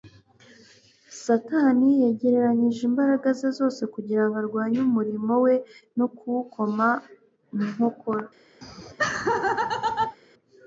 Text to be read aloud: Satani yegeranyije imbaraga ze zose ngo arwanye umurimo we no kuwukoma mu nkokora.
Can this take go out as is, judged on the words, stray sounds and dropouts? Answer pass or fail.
fail